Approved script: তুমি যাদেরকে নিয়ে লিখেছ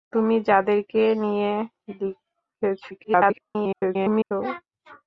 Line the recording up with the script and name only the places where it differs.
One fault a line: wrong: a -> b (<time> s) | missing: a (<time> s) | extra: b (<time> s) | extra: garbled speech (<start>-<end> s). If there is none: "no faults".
extra: garbled speech (2.9-4.3 s)